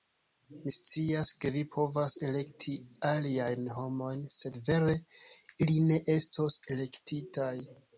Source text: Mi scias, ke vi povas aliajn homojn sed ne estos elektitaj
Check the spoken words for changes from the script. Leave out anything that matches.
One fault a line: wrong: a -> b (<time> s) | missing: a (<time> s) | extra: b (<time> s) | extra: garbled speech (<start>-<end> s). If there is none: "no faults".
extra: elekti (2.3 s)
extra: vere ili (4.7 s)